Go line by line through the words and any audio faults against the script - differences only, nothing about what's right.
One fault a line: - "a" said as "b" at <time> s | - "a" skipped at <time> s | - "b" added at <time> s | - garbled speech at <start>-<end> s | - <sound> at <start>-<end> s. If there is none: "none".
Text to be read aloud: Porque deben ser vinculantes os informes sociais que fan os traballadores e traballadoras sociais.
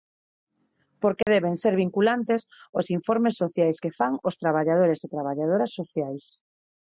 - dropout at 1.2-1.3 s